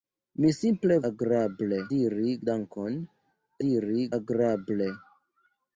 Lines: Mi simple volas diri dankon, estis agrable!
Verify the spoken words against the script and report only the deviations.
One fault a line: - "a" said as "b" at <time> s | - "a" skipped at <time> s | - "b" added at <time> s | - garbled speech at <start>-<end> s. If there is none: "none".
- "volas" said as "agrable" at 1.1 s
- "estis" said as "diri" at 3.7 s